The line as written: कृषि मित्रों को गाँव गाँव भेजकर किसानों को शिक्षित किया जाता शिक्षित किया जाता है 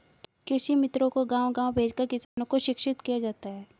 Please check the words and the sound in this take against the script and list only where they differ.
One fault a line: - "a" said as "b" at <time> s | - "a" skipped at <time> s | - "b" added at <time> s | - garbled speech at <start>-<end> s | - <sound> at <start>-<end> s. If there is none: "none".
- dropout at 2.2-2.4 s
- "शिक्षित किया जाता" skipped at 3.5 s